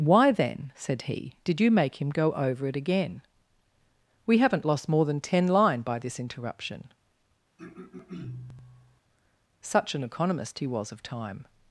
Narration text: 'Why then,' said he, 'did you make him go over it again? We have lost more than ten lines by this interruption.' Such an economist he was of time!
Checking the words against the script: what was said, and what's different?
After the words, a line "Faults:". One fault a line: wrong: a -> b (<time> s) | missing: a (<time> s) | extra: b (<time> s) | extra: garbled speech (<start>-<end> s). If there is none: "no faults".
'Why then,' said he, 'did you make him go over it again? We haven't lost more than ten line by this interruption.' Such an economist he was of time!
Faults:
wrong: have -> haven't (4.4 s)
wrong: lines -> line (5.5 s)